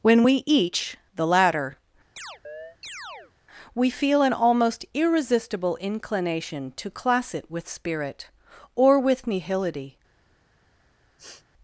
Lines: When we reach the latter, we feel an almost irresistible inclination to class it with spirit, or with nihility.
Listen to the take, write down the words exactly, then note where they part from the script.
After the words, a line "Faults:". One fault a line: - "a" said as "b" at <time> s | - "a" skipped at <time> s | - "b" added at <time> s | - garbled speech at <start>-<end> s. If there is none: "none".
When we each the latter, we feel an almost irresistible inclination to class it with spirit, or with nihility.
Faults:
- "reach" said as "each" at 0.5 s